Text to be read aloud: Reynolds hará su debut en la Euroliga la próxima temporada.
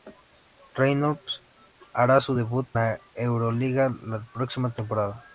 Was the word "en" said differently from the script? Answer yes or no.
yes